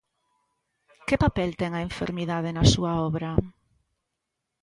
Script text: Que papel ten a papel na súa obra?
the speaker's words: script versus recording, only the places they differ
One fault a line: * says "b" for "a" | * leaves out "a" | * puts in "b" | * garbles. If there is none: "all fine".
* says "enfermidade" for "papel"